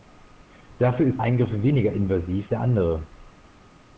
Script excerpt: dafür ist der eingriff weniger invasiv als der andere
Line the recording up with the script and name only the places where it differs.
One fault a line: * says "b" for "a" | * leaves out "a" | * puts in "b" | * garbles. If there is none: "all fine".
* leaves out "der"
* leaves out "als"